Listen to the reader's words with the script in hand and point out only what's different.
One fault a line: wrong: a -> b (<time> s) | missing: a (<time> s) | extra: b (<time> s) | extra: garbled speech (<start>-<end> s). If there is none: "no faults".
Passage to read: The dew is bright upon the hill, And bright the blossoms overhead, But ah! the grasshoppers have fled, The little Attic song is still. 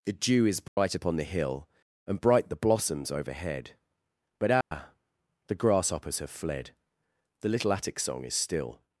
no faults